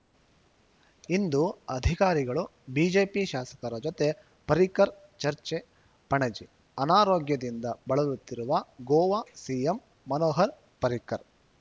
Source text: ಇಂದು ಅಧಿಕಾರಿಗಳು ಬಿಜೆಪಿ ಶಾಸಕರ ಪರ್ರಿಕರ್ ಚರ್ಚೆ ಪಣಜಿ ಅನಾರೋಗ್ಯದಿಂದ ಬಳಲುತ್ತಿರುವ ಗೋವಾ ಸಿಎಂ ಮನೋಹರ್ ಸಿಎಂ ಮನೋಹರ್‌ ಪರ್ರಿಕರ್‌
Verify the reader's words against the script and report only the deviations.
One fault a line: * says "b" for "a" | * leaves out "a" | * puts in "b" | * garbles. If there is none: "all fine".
* puts in "ಜೊತೆ"
* leaves out "ಸಿಎಂ ಮನೋಹರ್"